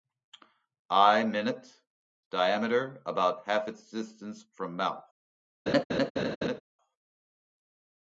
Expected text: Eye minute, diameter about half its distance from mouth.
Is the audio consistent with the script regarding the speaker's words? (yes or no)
yes